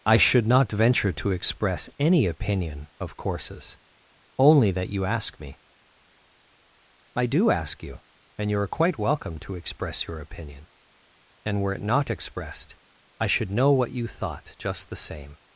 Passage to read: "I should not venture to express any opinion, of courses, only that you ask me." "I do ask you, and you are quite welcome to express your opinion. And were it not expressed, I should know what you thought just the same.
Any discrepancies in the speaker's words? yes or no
no